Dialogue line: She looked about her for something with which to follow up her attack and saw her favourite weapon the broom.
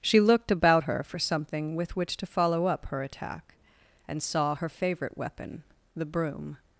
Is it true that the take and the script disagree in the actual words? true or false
false